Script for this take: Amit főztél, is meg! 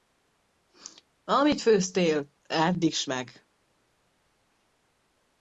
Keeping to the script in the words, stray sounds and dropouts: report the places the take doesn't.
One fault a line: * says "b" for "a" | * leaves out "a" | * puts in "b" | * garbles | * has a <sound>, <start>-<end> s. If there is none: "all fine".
* puts in "edd"